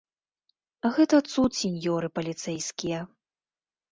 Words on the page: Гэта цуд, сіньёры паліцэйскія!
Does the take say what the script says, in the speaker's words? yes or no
yes